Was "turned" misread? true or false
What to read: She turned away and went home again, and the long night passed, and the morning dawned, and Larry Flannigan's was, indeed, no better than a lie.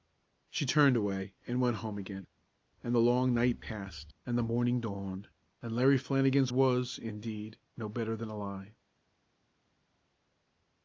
false